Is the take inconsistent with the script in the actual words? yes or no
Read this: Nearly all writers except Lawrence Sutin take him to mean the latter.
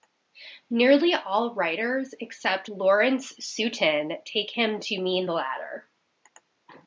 no